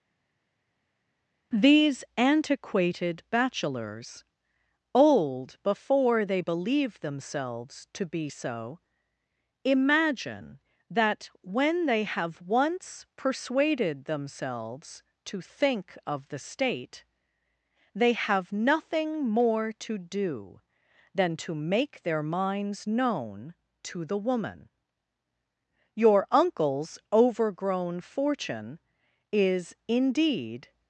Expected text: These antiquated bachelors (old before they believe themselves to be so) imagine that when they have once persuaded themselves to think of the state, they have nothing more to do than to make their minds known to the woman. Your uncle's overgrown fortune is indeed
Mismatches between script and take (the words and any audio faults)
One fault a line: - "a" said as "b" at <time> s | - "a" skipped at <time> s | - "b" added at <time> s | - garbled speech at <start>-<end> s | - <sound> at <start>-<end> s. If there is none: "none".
none